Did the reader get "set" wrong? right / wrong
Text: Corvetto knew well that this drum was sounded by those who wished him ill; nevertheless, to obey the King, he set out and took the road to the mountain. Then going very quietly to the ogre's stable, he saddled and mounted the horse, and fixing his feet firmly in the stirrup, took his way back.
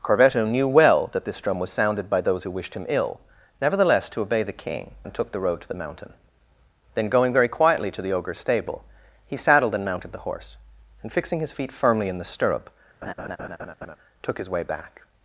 wrong